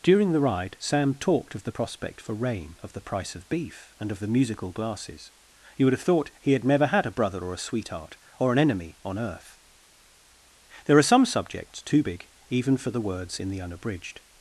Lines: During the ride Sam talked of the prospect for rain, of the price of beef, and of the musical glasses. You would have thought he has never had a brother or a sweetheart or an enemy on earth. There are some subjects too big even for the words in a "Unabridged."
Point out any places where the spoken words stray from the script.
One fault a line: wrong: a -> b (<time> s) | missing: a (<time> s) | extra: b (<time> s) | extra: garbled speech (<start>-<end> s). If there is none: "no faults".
wrong: has -> had (6.5 s)
wrong: a -> the (13.5 s)